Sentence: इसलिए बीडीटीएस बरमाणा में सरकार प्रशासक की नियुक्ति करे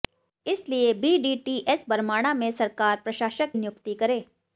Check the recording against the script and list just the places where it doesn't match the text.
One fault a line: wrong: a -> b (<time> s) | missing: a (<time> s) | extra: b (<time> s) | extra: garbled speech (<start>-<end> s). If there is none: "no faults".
missing: की (3.5 s)